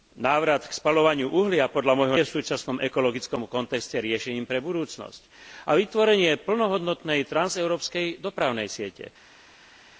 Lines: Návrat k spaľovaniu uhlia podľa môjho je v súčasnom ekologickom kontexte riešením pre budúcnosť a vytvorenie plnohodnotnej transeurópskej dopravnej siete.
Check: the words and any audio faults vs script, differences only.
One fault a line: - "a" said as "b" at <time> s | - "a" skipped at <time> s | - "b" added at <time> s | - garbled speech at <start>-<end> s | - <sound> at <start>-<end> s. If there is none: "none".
none